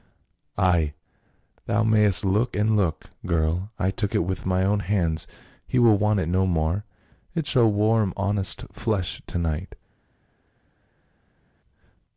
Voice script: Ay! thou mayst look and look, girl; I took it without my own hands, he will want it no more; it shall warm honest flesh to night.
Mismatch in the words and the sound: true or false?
true